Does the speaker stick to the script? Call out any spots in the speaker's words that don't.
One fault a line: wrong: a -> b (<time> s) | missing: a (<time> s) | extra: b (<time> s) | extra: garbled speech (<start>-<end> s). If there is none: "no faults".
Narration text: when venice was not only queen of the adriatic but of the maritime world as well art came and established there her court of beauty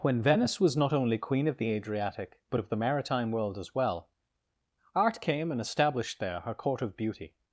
no faults